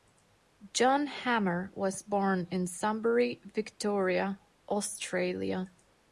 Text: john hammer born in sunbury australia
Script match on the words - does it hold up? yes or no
no